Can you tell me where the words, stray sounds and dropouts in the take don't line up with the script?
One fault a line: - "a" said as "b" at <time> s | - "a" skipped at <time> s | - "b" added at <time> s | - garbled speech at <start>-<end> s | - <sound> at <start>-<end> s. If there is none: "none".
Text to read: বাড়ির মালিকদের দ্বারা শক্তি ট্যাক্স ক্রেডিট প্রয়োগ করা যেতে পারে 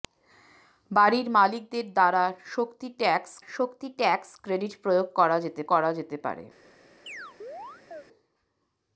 - "শক্তি ট্যাক্স" added at 3.5 s
- "করা যেতে" added at 5.7 s
- chirp at 7.1-8.0 s